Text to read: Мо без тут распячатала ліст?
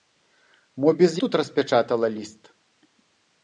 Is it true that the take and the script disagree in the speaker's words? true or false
false